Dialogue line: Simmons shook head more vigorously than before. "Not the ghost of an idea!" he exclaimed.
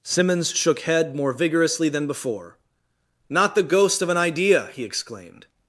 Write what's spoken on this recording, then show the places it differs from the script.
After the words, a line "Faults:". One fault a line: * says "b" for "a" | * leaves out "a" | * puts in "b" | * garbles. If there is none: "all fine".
Simmons shook head more vigorously than before. "Not the ghost of an idea!" he exclaimed.
Faults:
all fine